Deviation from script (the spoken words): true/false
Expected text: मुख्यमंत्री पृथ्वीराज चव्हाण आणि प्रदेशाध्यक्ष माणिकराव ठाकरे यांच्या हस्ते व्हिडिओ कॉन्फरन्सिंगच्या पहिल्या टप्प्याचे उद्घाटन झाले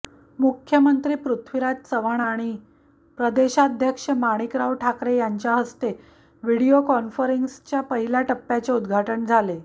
false